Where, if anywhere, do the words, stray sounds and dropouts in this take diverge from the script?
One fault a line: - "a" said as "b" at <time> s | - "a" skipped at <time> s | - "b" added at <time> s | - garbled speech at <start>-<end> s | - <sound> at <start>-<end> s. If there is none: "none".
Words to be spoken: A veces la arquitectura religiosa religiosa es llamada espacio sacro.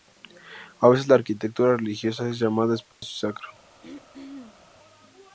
- "religiosa" skipped at 2.3 s
- dropout at 2.9-3.0 s
- throat clearing at 3.8-4.7 s